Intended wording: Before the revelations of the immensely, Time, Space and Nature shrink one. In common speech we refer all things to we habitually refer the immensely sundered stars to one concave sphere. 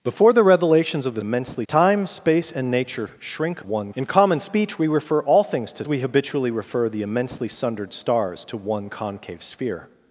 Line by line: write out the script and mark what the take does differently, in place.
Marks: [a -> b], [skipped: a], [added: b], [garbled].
Before the revelations of the immensely, Time, Space and Nature shrink one. In common speech we refer all things to we habitually refer the immensely sundered stars to one concave sphere.